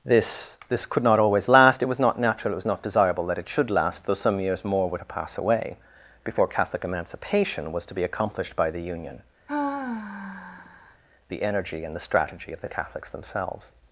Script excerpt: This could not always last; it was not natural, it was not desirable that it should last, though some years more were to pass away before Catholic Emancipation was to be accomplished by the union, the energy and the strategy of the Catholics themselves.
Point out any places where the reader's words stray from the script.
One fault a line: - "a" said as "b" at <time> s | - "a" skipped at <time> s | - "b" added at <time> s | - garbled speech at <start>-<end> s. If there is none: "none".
- "this" added at 0.7 s